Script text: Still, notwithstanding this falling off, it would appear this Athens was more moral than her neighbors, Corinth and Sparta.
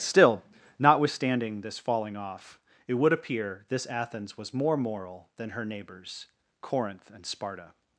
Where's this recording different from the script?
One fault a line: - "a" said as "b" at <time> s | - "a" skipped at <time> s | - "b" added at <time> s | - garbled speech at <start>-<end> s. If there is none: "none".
none